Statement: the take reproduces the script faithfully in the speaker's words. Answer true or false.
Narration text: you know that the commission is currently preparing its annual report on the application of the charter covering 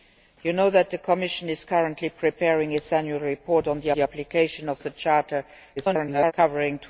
false